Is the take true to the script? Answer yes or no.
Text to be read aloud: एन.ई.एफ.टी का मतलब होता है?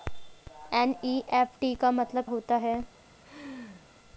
yes